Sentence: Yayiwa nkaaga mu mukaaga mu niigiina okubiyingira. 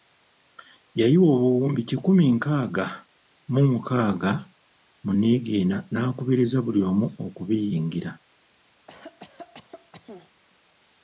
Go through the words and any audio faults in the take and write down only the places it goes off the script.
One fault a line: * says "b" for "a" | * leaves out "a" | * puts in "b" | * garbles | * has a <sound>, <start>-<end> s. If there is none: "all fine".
* puts in "obuwumbi kikumi"
* puts in "n'akubiriza buli omu"
* has a cough, 8.9-10.3 s